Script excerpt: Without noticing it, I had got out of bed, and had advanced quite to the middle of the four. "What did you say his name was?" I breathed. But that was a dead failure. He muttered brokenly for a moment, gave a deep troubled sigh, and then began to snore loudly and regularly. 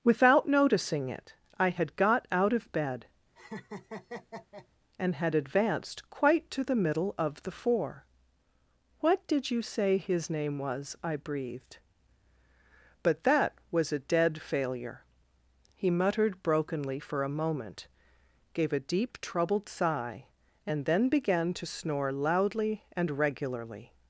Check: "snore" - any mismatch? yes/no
no